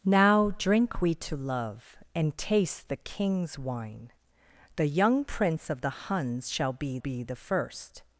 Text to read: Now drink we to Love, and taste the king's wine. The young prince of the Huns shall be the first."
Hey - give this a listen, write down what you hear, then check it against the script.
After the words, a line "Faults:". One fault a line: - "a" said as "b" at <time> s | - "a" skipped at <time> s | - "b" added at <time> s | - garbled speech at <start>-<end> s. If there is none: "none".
Now drink we to Love, and taste the king's wine. The young prince of the Huns shall be be the first."
Faults:
- "be" added at 7.0 s